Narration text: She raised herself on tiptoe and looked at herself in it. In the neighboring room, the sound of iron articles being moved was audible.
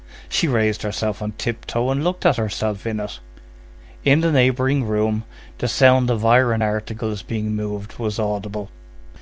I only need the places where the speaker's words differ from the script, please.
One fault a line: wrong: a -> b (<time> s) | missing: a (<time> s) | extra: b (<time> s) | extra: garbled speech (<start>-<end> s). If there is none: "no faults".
no faults